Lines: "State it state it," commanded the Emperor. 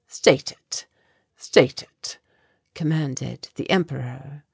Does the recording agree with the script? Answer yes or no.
yes